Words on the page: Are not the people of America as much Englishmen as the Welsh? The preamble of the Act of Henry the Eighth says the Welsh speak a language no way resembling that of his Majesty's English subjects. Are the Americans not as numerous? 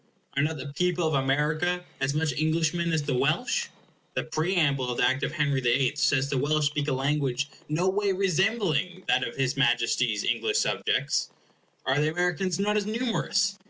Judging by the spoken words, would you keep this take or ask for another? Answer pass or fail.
pass